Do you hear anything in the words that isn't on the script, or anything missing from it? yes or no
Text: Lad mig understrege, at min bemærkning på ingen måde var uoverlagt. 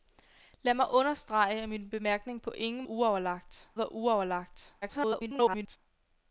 yes